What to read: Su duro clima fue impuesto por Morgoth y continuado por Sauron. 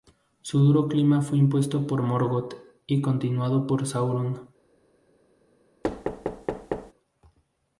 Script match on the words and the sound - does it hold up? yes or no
no